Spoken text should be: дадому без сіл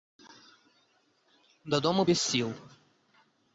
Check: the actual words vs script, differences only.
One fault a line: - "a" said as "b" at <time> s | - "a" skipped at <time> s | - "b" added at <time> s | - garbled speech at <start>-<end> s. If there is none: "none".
none